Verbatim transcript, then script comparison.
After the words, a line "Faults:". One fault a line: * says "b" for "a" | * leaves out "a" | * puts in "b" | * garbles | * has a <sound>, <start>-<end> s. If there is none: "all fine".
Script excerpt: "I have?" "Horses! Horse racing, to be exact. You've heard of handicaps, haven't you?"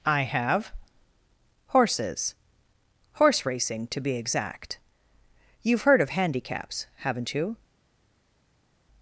"I have?" "Horses! Horse racing, to be exact. You've heard of handicaps, haven't you?"
Faults:
all fine